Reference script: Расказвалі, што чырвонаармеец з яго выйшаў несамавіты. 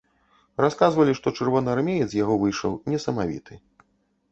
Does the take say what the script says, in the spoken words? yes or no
yes